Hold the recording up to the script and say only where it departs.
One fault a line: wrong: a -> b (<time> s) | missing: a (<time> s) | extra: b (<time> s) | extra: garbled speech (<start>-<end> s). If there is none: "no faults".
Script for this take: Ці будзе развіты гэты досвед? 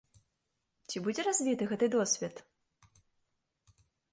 no faults